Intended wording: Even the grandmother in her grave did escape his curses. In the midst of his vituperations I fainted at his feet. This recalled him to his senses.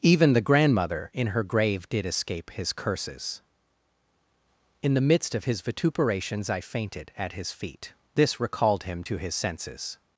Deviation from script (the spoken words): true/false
false